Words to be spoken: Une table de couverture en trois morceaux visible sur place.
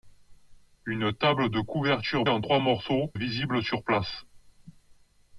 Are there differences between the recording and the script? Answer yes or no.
no